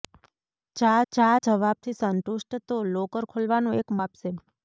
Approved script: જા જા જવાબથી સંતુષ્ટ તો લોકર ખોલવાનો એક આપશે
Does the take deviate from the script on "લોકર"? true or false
false